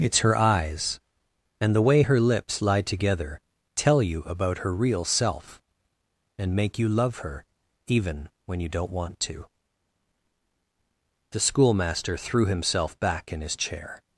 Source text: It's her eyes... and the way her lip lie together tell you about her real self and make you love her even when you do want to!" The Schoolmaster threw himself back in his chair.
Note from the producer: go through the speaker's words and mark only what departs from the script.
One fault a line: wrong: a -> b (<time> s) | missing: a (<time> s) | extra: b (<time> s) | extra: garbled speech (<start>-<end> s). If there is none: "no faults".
wrong: lip -> lips (2.2 s)
wrong: do -> don't (8.7 s)